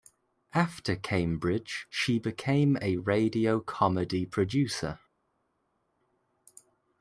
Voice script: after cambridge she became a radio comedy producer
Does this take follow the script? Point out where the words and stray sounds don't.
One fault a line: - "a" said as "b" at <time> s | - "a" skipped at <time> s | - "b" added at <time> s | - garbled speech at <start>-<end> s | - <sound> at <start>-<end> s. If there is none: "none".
none